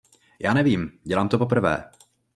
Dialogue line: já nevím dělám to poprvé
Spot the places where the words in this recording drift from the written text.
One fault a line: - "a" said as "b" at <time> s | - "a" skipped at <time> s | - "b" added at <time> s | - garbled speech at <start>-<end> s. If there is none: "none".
none